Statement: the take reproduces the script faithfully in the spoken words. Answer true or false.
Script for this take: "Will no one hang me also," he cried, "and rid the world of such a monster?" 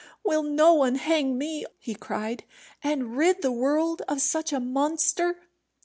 false